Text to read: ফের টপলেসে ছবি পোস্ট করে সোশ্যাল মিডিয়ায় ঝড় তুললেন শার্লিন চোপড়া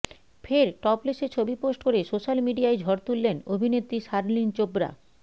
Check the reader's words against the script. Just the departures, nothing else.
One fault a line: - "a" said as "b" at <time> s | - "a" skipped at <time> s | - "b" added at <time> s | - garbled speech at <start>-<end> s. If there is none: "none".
- "অভিনেত্রী" added at 3.5 s